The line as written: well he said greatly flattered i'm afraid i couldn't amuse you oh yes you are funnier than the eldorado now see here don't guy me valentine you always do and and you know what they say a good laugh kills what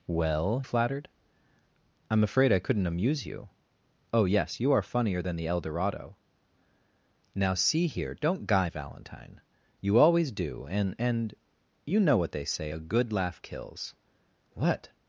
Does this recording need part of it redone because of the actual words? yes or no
yes